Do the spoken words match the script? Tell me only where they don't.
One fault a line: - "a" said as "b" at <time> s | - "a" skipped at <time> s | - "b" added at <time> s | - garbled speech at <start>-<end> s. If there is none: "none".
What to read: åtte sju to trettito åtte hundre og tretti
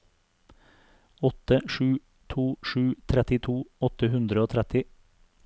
- "sju" added at 2.6 s